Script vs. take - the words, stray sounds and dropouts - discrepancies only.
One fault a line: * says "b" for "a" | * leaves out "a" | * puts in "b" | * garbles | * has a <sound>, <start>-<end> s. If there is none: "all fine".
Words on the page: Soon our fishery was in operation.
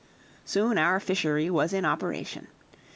all fine